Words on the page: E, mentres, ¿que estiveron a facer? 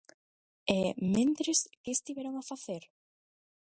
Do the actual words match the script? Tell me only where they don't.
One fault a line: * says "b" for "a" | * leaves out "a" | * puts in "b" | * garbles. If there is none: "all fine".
all fine